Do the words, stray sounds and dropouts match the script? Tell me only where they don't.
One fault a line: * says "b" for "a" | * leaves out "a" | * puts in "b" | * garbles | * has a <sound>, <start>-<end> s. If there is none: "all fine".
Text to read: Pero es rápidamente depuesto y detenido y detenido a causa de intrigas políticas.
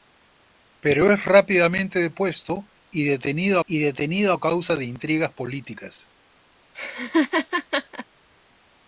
* has a laugh, 6.7-8.1 s